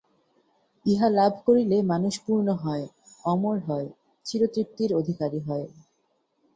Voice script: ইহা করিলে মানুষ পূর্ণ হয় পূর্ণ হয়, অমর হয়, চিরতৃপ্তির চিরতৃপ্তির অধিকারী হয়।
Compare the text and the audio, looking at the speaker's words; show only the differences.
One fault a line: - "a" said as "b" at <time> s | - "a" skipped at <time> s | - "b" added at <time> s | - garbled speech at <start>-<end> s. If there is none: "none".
- "লাভ" added at 1.1 s
- "পূর্ণ হয়" skipped at 2.9 s
- "চিরতৃপ্তির" skipped at 4.9 s